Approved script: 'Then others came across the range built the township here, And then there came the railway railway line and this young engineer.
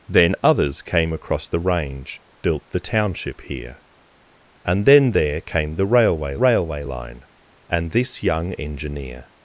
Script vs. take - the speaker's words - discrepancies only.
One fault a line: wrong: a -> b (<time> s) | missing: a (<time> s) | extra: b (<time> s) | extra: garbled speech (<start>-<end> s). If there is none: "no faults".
no faults